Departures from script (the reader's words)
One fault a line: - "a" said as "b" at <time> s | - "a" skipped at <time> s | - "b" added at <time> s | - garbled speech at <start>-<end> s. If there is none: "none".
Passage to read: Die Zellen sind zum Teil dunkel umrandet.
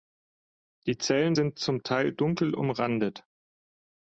none